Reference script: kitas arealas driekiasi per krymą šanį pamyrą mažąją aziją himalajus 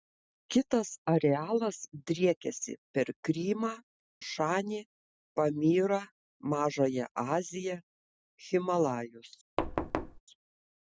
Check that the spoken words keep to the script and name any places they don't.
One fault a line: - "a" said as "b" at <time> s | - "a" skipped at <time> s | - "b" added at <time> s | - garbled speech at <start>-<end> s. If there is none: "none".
none